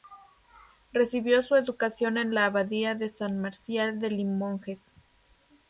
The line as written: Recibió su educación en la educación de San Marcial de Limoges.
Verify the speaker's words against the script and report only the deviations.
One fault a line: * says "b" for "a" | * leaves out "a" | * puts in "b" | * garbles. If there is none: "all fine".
* says "abadía" for "educación"